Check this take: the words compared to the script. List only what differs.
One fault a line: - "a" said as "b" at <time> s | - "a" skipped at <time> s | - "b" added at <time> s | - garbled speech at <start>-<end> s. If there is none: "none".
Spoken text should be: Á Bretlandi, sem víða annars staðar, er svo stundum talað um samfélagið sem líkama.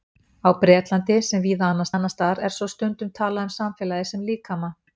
- "annars" added at 1.9 s